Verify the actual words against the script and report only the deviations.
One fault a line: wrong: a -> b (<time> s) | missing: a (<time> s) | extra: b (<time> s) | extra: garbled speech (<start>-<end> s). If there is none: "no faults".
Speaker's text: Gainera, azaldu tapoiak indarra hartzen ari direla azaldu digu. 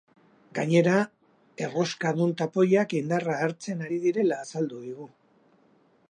wrong: azaldu -> erroskadun (1.6 s)